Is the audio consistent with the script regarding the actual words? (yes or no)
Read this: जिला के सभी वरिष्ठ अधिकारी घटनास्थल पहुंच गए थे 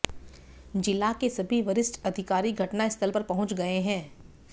no